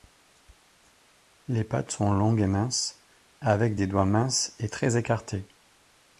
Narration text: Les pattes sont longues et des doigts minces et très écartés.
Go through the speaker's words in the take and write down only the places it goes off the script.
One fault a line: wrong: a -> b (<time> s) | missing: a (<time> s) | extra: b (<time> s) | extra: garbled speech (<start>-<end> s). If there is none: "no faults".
extra: minces avec (2.5 s)